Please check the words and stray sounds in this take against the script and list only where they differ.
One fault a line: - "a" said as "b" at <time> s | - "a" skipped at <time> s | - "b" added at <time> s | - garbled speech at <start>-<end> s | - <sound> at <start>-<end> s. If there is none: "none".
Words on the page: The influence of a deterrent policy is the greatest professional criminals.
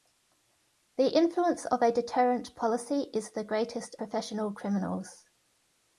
none